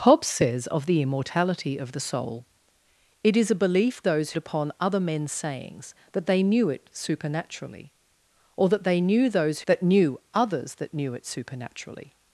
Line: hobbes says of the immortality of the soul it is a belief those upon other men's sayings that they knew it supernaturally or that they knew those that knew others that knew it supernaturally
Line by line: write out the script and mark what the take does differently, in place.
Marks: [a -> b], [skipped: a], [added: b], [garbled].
hobbes says of the immortality of the soul it is a belief those upon other men's sayings that they knew it supernaturally or that they knew those that knew others that knew it supernaturally